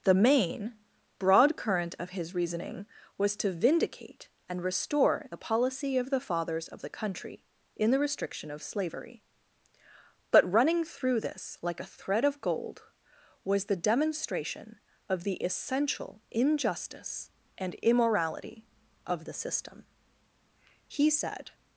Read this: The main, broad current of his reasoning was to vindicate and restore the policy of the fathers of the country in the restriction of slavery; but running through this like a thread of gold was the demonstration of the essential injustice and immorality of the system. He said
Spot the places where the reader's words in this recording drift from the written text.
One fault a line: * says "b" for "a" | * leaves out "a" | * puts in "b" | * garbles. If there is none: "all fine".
all fine